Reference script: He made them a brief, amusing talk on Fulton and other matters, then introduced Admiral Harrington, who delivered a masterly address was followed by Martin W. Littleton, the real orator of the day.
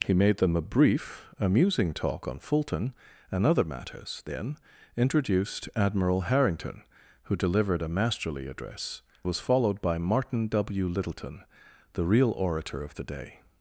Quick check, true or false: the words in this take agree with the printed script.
true